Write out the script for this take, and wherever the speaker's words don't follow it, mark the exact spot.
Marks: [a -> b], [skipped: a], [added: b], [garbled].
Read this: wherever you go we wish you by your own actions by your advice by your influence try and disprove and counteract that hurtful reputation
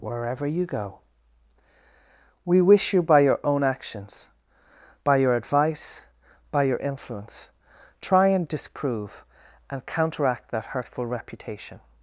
wherever you go we wish you by your own actions by your advice by your influence try and disprove and counteract that hurtful reputation